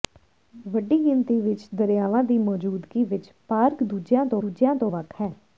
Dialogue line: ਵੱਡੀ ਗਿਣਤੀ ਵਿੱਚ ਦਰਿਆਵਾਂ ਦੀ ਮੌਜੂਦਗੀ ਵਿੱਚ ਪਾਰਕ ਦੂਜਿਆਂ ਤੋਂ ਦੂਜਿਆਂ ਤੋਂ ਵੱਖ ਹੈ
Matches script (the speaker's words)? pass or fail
pass